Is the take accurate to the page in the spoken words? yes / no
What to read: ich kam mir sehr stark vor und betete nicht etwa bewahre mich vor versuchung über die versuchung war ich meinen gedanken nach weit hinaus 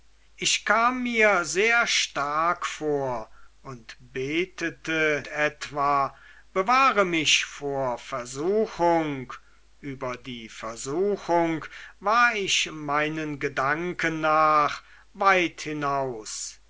no